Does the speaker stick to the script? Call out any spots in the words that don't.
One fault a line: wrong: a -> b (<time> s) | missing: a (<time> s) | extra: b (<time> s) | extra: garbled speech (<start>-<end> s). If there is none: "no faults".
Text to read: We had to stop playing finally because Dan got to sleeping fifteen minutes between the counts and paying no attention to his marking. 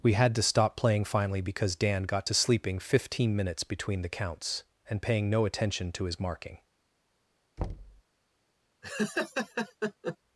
no faults